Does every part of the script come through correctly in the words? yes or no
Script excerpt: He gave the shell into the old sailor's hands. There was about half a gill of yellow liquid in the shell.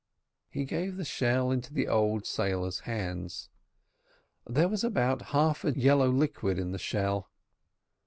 no